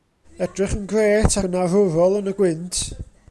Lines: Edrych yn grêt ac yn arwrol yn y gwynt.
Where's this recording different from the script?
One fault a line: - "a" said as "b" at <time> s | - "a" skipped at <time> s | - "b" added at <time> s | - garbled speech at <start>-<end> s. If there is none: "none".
- "ac" skipped at 1.4 s